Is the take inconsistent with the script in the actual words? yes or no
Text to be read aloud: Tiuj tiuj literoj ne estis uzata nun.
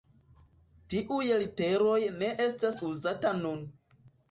yes